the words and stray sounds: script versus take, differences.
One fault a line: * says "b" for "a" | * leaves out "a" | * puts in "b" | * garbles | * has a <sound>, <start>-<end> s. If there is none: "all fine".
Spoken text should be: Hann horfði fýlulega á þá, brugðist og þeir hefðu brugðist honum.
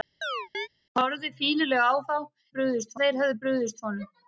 * has a chirp, 0.2-0.7 s